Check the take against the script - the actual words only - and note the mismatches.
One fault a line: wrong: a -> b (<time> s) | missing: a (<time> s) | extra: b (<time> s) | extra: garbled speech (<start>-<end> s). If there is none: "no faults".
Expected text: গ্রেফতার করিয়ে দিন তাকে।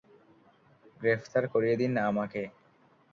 wrong: তাকে -> আমাকে (2.1 s)